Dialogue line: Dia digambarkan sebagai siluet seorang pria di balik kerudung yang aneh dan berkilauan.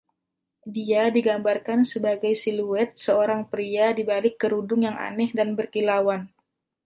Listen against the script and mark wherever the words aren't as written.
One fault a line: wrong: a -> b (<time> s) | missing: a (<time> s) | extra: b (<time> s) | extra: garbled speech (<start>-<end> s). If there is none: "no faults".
no faults